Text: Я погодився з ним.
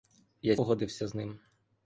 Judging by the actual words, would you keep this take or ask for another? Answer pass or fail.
pass